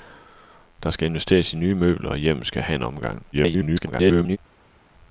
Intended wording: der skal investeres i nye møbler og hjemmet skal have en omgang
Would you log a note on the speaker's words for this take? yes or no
yes